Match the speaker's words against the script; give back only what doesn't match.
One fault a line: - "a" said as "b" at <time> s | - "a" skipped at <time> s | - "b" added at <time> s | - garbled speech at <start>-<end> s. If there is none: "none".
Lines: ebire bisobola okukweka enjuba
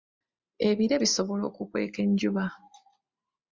none